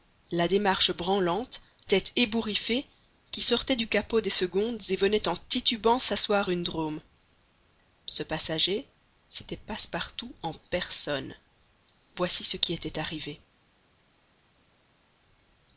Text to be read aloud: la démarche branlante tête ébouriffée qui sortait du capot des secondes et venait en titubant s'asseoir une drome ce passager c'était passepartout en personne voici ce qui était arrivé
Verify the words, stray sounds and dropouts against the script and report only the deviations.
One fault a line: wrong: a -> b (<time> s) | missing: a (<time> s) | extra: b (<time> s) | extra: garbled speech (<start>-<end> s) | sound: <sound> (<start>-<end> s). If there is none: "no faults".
no faults